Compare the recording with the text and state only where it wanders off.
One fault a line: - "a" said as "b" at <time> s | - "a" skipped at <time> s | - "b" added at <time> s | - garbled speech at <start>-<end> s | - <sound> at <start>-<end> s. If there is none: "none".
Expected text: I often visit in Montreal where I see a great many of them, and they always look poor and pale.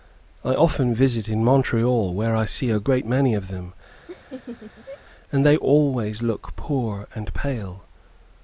- laugh at 4.1-5.0 s